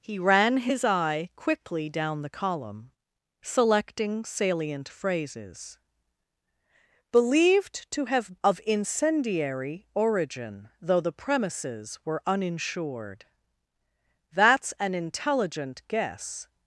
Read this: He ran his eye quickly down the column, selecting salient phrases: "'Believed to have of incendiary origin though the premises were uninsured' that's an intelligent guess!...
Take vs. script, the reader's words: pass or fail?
pass